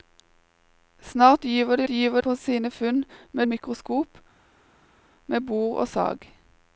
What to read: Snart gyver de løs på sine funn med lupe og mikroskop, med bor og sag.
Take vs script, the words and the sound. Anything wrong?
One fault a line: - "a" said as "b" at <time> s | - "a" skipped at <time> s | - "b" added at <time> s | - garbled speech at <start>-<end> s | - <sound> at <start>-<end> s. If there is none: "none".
- "løs" said as "gyver" at 1.9 s
- "lupe og" skipped at 3.4 s